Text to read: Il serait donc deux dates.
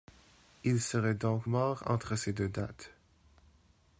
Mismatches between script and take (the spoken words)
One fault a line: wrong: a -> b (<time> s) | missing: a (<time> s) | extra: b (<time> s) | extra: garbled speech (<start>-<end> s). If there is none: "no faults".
extra: mort entre ces (1.4 s)